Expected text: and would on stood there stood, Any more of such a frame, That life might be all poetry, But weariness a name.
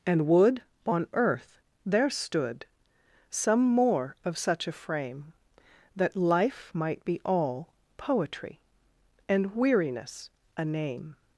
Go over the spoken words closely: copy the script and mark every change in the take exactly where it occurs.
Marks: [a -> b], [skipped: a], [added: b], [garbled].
and would on [stood -> earth] there stood, [Any -> Some] more of such a frame, That life might be all poetry, [But -> And] weariness a name.